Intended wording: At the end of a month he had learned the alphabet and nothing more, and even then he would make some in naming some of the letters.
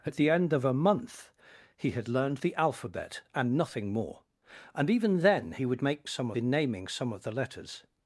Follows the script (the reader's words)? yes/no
yes